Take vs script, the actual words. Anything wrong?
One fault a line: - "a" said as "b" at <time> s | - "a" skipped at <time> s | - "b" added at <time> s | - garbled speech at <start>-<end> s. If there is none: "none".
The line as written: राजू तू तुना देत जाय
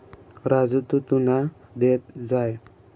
none